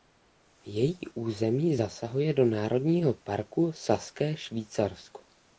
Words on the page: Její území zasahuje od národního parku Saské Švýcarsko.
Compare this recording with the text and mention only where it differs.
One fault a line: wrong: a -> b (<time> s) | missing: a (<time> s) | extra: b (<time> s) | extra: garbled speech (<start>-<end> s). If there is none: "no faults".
wrong: od -> do (2.3 s)